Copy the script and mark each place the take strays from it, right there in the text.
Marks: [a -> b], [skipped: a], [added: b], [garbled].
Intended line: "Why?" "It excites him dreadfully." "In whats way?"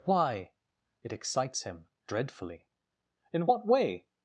"Why?" "It excites him dreadfully." "In [whats -> what] way?"